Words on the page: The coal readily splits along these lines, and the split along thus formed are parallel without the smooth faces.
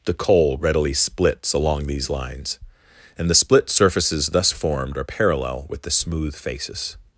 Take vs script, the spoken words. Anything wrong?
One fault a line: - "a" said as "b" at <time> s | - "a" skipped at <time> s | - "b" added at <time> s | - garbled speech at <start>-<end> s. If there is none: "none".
- "along" said as "surfaces" at 3.7 s
- "without" said as "with" at 5.7 s